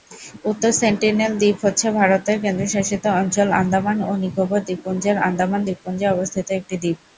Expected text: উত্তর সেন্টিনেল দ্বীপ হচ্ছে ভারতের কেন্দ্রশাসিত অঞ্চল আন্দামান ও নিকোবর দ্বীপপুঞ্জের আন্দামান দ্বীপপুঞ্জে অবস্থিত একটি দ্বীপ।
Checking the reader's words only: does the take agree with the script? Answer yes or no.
yes